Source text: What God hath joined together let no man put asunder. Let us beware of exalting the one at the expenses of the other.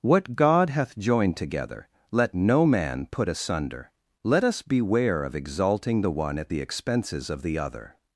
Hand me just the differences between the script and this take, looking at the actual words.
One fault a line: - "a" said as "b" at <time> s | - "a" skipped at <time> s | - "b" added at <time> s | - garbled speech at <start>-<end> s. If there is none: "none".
none